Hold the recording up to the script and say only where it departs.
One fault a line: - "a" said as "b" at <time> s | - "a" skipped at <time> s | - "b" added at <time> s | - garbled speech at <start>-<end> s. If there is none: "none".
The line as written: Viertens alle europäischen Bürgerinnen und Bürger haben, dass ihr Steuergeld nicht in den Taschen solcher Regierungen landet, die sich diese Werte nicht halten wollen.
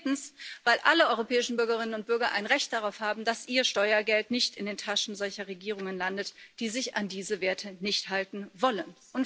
- "weil" added at 0.6 s
- "ein Recht darauf" added at 2.3 s
- "an" added at 6.9 s